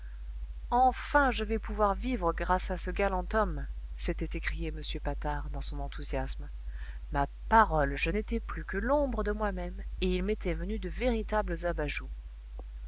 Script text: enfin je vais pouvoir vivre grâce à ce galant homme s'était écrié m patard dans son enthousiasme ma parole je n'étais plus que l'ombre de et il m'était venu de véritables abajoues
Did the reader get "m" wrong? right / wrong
right